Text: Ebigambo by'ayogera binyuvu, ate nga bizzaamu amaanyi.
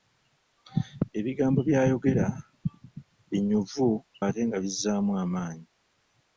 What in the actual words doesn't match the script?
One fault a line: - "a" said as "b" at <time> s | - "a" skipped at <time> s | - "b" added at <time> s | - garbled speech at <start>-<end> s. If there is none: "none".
none